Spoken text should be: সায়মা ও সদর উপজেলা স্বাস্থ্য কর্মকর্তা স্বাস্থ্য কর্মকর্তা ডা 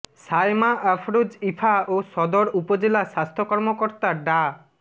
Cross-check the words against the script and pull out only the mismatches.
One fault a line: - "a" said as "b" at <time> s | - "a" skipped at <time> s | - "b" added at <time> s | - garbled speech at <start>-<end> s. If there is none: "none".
- "আফরোজ ইভা" added at 0.9 s
- "স্বাস্থ্য কর্মকর্তা" skipped at 4.1 s